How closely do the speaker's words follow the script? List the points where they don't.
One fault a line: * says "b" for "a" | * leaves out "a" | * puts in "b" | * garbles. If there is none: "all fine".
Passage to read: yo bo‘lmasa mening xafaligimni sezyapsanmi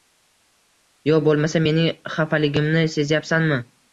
all fine